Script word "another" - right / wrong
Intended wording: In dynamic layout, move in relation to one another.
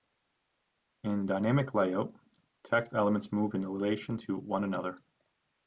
right